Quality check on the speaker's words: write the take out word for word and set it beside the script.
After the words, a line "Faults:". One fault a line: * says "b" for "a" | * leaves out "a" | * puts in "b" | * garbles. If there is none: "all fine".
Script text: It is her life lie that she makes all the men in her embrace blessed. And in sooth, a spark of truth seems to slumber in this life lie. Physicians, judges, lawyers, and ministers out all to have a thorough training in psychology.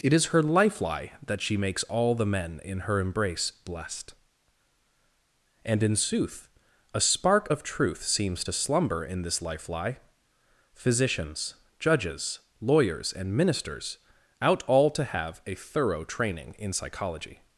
It is her life lie that she makes all the men in her embrace blessed. And in sooth, a spark of truth seems to slumber in this life lie. Physicians, judges, lawyers, and ministers out all to have a thorough training in psychology.
Faults:
all fine